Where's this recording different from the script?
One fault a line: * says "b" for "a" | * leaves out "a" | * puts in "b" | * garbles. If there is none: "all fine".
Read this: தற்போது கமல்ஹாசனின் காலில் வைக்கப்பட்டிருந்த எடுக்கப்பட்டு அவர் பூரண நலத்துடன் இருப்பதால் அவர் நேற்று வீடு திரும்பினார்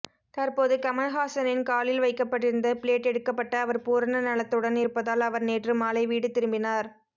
* puts in "பிளேட்"
* puts in "மாலை"